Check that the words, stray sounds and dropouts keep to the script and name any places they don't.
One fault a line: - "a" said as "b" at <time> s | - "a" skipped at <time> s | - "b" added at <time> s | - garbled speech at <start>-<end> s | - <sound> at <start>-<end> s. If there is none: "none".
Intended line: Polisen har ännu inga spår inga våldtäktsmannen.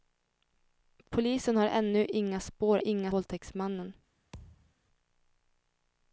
- thud at 4.3-4.7 s